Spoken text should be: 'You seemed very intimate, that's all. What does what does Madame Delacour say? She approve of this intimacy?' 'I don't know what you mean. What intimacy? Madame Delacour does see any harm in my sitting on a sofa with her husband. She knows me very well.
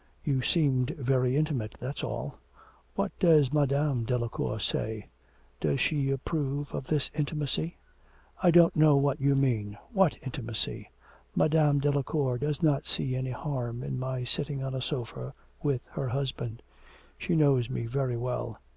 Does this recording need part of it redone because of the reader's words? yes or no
yes